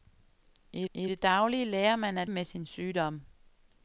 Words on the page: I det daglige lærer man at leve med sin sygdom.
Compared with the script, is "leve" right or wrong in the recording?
wrong